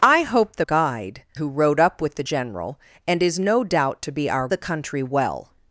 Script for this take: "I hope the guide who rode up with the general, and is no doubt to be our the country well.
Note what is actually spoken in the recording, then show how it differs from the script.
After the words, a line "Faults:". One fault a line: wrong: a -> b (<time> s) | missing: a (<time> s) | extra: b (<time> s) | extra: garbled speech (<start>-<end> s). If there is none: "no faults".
"I hope the guide who rode up with the general, and is no doubt to be our the country well.
Faults:
no faults